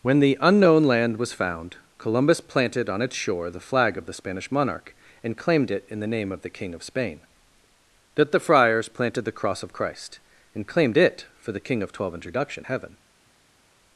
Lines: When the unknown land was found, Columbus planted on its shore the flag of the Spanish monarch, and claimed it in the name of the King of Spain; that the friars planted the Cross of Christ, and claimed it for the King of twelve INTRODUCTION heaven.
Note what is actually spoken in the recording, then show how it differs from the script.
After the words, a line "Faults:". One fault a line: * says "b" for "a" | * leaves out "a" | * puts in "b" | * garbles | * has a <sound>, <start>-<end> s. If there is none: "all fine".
When the unknown land was found, Columbus planted on its shore the flag of the Spanish monarch, and claimed it in the name of the King of Spain; that the friars planted the Cross of Christ, and claimed it for the King of twelve INTRODUCTION heaven.
Faults:
all fine